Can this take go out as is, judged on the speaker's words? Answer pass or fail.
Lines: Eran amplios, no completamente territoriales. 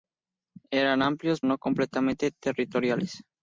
pass